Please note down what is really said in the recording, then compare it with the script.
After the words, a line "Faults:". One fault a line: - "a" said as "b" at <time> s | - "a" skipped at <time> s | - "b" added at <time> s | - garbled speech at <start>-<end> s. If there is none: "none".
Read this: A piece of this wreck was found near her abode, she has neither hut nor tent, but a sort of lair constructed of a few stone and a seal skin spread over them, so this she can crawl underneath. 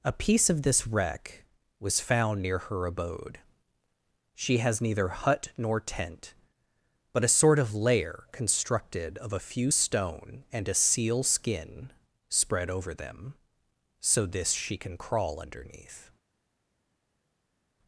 A piece of this wreck was found near her abode, she has neither hut nor tent, but a sort of lair constructed of a few stone and a seal skin spread over them, so this she can crawl underneath.
Faults:
none